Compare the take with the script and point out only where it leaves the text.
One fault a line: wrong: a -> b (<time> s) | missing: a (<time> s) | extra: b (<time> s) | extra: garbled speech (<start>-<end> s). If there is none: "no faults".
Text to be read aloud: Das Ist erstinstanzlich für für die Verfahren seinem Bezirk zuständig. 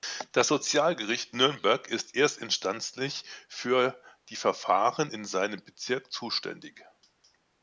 extra: Sozialgericht Nürnberg (0.5 s)
missing: für (4.0 s)
extra: in (5.1 s)